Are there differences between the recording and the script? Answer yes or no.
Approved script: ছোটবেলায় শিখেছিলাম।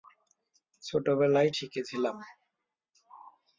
no